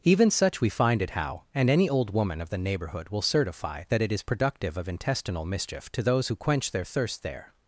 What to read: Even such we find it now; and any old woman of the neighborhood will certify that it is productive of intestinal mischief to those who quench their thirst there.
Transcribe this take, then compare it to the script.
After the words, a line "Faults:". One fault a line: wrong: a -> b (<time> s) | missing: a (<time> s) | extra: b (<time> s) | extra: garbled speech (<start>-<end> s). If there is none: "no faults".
Even such we find it how; and any old woman of the neighborhood will certify that it is productive of intestinal mischief to those who quench their thirst there.
Faults:
wrong: now -> how (1.1 s)